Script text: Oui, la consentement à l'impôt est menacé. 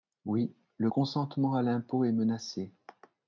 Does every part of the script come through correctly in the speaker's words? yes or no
no